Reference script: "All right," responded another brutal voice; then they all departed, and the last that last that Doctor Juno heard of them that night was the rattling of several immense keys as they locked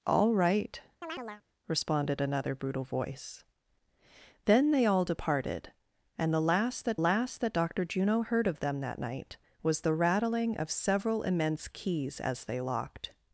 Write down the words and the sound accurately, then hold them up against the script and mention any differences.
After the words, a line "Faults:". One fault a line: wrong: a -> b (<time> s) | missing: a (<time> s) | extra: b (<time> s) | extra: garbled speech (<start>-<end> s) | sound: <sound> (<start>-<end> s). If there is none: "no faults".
"All right," responded another brutal voice; then they all departed, and the last that last that Doctor Juno heard of them that night was the rattling of several immense keys as they locked
Faults:
sound: chirp (1.0-1.4 s)